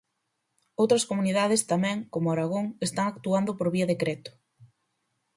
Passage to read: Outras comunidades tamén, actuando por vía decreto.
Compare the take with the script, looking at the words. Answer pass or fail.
fail